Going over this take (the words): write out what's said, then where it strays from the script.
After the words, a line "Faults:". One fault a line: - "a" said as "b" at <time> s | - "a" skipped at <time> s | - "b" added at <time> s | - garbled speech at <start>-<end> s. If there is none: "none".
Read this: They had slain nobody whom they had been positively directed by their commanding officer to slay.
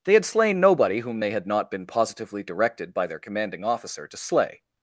They had slain nobody whom they had not been positively directed by their commanding officer to slay.
Faults:
- "not" added at 1.5 s